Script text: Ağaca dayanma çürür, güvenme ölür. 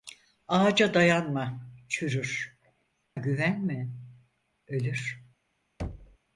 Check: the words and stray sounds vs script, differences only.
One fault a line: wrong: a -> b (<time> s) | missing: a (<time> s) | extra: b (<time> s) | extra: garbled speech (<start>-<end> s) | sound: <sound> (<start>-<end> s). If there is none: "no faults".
sound: thud (5.8-6.2 s)